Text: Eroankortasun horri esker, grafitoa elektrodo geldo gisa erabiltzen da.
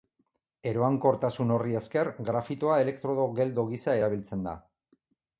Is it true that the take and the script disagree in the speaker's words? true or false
false